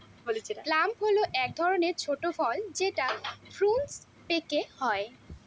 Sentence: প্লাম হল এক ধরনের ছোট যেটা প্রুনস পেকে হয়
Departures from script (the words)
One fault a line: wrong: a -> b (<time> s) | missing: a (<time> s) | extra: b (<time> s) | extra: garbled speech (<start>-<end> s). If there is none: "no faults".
extra: ফল (2.4 s)